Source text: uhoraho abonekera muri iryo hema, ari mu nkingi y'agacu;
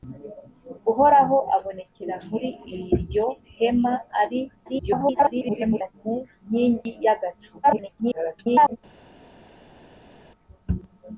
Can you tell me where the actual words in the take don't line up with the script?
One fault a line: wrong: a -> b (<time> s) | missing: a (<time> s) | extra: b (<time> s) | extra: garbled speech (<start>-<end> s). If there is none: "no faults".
extra: garbled speech (4.7-5.9 s)
extra: garbled speech (7.6-8.8 s)